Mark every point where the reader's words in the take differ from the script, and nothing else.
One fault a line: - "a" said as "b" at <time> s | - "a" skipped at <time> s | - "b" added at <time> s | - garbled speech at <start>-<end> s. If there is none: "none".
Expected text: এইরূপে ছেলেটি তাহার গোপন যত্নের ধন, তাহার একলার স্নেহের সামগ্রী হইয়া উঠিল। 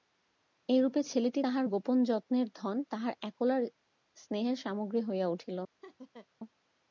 none